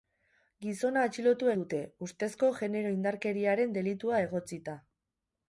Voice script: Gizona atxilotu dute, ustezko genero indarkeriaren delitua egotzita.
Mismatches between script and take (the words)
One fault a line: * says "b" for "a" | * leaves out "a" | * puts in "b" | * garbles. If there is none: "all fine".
all fine